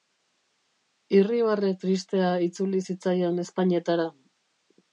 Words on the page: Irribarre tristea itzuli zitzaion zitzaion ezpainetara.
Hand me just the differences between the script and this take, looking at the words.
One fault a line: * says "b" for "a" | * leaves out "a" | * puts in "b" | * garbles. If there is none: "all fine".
* leaves out "zitzaion"